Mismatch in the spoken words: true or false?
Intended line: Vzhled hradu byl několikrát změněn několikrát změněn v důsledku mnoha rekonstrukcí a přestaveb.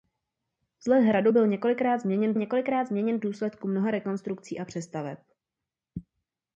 false